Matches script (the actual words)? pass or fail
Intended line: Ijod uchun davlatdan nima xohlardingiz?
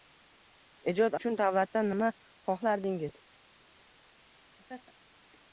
pass